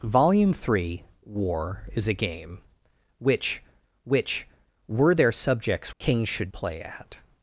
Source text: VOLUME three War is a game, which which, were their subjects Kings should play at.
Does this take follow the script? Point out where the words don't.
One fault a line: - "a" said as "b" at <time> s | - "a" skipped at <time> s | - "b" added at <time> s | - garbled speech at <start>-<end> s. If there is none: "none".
none